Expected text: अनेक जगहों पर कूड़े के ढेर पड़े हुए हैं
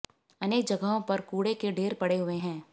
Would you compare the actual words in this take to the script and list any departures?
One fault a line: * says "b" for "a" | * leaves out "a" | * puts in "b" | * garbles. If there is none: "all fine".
all fine